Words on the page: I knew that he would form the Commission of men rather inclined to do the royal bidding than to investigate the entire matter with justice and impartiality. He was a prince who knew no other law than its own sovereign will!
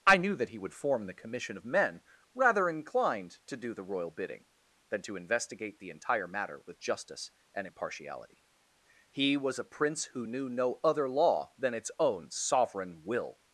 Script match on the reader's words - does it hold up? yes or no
yes